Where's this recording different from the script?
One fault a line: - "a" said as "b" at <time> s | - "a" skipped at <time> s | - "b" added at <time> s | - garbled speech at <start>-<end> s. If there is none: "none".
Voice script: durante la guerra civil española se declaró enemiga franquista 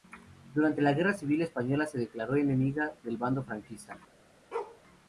- "del bando" added at 3.0 s